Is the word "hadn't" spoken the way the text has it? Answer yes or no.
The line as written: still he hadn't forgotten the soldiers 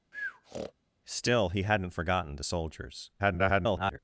yes